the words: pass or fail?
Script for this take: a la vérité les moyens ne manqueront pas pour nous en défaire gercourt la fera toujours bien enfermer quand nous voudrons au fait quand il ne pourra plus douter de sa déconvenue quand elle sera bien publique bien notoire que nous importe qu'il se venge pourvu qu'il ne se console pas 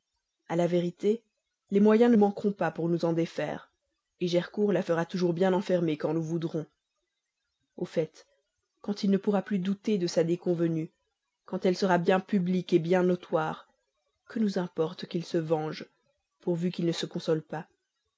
pass